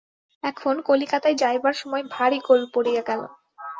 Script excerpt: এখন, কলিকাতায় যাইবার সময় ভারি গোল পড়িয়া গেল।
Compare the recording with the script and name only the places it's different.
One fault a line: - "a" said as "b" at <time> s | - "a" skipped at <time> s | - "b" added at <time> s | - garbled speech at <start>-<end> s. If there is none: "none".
none